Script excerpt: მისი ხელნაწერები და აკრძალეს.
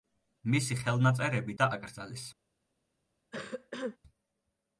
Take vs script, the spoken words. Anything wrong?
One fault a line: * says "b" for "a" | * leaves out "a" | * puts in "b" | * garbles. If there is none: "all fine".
all fine